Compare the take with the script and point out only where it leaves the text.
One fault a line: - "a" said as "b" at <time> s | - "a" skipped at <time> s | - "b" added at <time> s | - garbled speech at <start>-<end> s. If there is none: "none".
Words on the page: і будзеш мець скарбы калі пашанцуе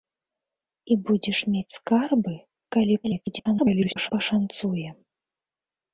- garbled speech at 3.0-4.1 s